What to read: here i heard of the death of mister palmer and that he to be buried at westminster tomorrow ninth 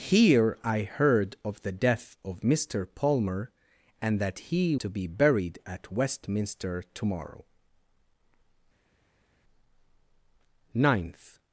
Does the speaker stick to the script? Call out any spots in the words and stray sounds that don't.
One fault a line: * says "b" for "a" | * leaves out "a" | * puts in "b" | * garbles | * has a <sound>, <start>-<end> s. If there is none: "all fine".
all fine